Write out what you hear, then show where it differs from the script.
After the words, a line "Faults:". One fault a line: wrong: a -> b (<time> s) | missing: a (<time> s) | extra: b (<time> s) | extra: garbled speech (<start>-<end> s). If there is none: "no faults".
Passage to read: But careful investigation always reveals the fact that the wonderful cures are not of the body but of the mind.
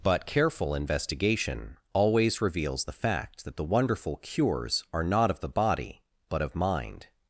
But careful investigation always reveals the fact that the wonderful cures are not of the body but of mind.
Faults:
missing: the (6.6 s)